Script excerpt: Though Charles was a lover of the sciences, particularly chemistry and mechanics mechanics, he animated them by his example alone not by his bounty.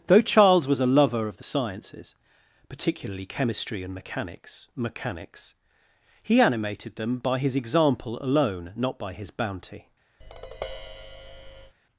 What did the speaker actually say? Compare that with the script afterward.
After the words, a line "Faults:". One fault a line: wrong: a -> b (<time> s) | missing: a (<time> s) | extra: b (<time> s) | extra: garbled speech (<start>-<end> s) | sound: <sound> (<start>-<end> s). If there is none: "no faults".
Though Charles was a lover of the sciences, particularly chemistry and mechanics mechanics, he animated them by his example alone not by his bounty.
Faults:
sound: tap (10.2-11.8 s)